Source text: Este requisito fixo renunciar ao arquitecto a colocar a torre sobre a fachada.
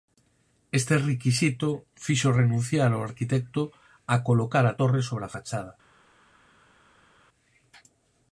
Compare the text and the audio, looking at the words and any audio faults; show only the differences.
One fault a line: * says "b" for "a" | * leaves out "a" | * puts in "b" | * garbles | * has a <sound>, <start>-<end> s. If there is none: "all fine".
all fine